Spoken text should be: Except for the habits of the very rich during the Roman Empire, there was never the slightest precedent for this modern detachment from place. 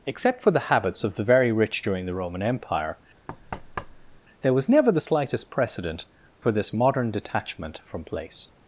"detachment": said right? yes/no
yes